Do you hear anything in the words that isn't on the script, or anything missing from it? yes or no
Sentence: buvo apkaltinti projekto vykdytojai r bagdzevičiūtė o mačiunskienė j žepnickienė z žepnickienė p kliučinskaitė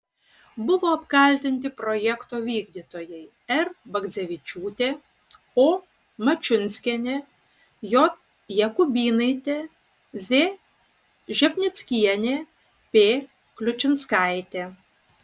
yes